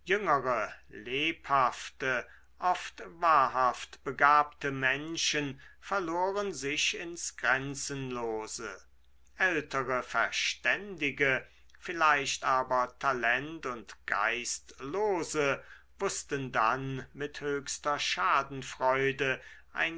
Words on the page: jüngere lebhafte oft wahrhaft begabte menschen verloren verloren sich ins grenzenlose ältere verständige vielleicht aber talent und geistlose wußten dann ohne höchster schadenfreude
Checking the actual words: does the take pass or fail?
fail